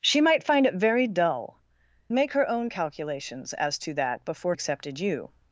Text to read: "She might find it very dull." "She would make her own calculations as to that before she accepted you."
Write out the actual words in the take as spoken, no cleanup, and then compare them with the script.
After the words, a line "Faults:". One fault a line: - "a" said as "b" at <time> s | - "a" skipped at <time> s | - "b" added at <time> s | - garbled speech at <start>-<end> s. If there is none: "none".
"She might find it very dull." "Make her own calculations as to that before accepted you."
Faults:
- "She would" skipped at 1.6 s
- "she" skipped at 4.6 s